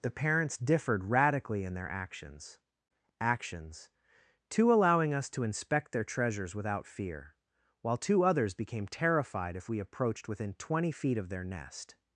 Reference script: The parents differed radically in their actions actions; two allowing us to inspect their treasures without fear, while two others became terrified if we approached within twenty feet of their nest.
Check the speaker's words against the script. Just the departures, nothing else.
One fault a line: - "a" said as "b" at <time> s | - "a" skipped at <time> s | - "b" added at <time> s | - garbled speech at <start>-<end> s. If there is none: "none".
none